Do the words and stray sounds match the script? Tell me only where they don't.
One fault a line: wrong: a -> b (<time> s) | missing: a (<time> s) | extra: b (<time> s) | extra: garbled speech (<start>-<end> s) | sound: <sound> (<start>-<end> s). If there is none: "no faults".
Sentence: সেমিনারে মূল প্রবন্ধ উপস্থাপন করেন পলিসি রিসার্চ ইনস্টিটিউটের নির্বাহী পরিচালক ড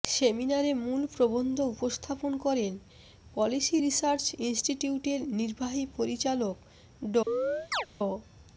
sound: chirp (7.3-7.9 s)